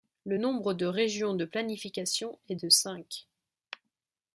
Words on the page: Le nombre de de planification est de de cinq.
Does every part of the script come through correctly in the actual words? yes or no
no